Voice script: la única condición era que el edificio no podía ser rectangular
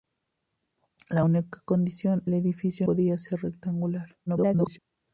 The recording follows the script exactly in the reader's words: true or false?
false